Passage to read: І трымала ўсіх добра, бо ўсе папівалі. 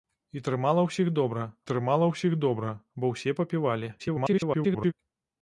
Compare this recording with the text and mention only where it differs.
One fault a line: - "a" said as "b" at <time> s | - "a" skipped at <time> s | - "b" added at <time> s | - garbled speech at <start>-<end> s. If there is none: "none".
- "трымала ўсіх добра" added at 1.7 s
- garbled speech at 4.0-4.9 s